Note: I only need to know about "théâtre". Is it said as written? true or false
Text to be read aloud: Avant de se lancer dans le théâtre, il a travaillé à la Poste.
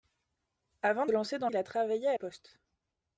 false